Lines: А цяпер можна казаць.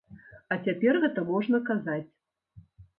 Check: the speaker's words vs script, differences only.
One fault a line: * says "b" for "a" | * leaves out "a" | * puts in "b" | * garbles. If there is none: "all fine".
* puts in "гэта"